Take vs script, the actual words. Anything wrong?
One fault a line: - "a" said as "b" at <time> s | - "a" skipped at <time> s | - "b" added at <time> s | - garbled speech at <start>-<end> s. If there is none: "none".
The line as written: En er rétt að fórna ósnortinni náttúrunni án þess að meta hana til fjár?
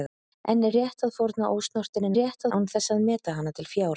- "náttúrunni" said as "rétt" at 2.2 s